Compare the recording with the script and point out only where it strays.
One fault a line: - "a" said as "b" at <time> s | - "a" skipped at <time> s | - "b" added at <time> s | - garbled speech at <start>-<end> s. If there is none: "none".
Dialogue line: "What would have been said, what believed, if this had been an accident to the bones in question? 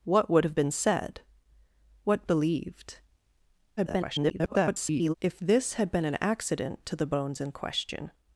- garbled speech at 3.8-5.1 s